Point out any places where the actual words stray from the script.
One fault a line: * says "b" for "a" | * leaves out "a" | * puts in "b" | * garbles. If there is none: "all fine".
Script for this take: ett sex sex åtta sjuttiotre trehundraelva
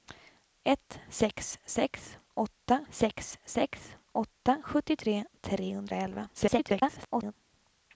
* puts in "sex sex åtta"
* garbles